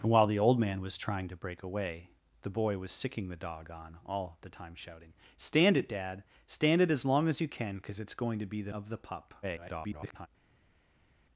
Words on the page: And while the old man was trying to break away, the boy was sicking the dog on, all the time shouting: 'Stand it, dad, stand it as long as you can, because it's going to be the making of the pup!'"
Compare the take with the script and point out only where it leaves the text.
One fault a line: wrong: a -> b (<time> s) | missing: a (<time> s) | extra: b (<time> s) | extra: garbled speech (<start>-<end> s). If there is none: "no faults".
missing: making (8.7 s)
extra: garbled speech (9.4-10.3 s)